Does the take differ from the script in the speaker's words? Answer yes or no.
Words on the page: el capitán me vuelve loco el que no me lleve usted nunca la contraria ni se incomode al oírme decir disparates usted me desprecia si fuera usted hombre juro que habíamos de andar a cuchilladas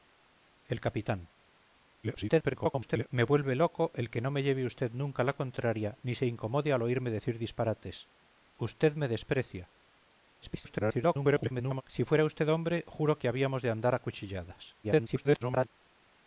yes